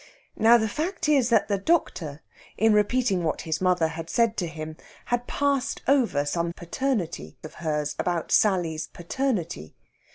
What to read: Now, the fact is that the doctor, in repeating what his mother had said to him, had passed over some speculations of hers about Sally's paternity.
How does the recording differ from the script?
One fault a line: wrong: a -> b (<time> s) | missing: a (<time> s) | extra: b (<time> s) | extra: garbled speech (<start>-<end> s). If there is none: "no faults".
wrong: speculations -> paternity (6.5 s)